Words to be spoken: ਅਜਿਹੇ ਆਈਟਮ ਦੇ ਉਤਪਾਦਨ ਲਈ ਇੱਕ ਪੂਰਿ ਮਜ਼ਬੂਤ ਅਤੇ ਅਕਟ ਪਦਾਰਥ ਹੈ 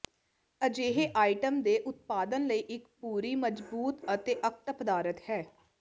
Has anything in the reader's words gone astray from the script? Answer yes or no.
no